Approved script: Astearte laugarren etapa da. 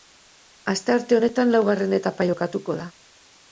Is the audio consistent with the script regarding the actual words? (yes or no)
no